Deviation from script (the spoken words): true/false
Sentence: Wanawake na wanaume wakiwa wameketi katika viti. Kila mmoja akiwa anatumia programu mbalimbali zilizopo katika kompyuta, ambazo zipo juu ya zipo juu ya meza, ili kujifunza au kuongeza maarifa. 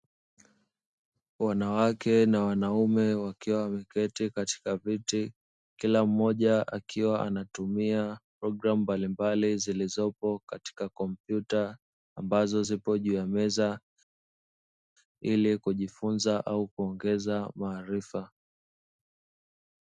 true